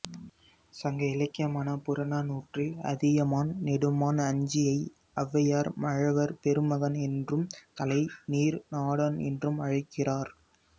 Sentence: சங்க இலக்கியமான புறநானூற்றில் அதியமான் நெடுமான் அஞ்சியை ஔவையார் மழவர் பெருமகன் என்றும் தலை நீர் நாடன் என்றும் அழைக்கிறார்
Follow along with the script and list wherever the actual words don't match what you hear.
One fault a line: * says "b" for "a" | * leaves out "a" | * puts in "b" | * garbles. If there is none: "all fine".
all fine